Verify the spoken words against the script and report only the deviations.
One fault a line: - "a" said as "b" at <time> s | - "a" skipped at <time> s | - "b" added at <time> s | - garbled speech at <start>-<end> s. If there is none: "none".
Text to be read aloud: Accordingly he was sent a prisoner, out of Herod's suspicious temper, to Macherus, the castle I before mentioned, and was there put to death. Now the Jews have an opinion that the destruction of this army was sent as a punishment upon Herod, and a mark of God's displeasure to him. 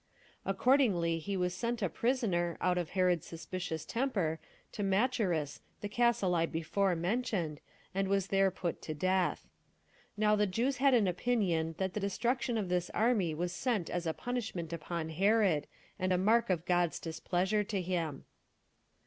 - "have" said as "had" at 10.8 s